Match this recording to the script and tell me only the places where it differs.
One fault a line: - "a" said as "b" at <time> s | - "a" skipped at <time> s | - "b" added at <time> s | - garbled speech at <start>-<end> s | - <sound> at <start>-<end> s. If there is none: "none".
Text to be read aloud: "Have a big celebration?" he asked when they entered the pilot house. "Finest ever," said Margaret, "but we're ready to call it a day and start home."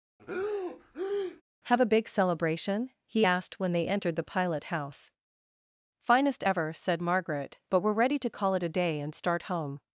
- breath at 0.2-1.4 s